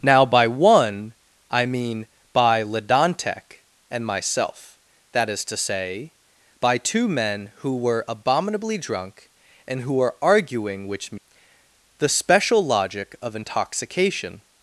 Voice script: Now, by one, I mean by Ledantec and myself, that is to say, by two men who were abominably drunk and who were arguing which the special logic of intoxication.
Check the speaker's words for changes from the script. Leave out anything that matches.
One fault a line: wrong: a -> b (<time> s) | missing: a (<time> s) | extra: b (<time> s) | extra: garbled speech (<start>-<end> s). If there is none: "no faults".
no faults